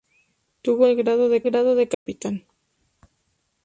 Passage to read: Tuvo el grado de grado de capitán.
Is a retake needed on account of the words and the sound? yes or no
yes